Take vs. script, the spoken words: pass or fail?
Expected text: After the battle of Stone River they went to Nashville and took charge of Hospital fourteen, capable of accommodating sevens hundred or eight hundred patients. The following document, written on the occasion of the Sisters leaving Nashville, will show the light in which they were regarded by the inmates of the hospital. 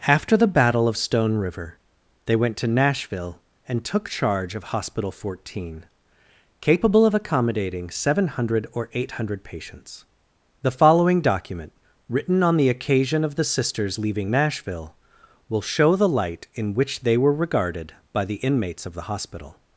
fail